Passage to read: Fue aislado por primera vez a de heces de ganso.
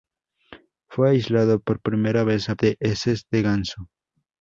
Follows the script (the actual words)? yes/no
yes